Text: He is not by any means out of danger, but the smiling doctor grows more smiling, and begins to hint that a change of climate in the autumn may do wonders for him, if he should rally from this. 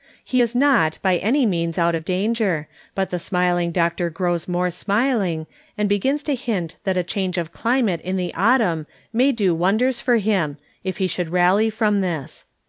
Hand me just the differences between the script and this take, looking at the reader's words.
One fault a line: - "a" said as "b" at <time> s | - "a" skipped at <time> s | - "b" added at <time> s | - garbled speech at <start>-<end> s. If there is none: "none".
none